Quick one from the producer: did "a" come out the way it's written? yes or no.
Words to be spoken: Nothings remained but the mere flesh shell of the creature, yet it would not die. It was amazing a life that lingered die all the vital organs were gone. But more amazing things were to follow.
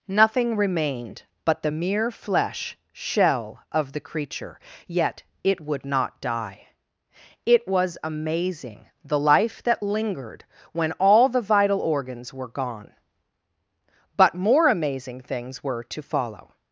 no